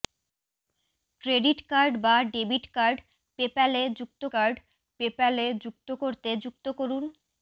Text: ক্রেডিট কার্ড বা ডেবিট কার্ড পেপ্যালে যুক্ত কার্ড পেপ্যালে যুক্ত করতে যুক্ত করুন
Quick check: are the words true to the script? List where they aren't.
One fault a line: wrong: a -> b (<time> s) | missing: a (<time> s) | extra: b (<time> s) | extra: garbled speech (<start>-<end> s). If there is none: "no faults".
no faults